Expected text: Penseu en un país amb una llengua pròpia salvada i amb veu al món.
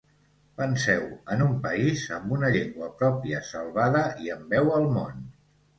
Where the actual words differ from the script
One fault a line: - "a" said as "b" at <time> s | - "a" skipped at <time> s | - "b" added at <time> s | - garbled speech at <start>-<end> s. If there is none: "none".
none